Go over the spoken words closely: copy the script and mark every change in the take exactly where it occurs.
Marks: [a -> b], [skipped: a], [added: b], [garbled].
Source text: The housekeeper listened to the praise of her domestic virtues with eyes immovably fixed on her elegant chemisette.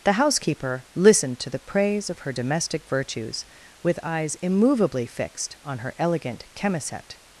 The housekeeper listened to the praise of her domestic virtues with eyes immovably fixed on her elegant chemisette.